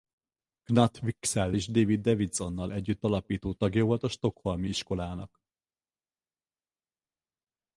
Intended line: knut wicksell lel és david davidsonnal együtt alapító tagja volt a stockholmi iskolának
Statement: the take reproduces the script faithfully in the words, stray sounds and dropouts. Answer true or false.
false